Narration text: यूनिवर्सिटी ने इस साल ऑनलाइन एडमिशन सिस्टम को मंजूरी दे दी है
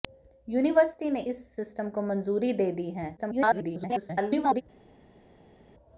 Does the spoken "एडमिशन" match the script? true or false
false